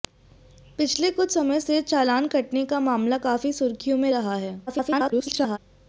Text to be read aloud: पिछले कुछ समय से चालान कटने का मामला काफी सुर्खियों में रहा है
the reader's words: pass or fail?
fail